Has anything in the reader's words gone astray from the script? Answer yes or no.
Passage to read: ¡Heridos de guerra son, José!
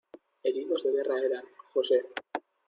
yes